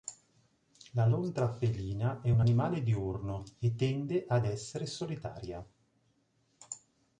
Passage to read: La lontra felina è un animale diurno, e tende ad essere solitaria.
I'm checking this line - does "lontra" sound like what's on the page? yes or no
yes